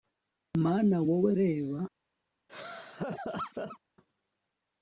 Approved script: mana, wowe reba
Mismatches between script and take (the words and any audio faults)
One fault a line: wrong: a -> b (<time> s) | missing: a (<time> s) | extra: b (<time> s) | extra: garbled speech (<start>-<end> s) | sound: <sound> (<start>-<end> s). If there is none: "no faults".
sound: laugh (2.5-3.8 s)